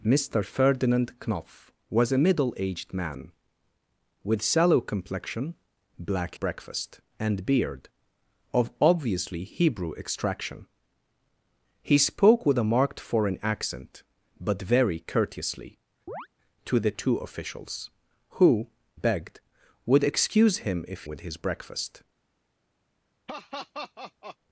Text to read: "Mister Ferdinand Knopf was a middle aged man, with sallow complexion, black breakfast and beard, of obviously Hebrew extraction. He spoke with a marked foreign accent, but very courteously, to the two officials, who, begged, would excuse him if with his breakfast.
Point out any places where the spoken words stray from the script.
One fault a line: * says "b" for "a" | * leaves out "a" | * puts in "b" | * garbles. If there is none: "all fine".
all fine